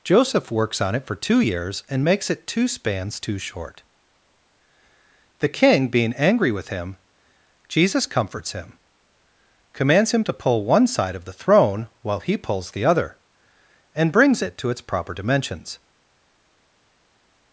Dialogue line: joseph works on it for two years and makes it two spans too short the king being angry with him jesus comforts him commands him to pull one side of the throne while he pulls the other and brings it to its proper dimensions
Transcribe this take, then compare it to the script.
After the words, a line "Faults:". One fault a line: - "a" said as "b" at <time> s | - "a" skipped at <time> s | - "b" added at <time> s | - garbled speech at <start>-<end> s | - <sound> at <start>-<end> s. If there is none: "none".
joseph works on it for two years and makes it two spans too short the king being angry with him jesus comforts him commands him to pull one side of the throne while he pulls the other and brings it to its proper dimensions
Faults:
none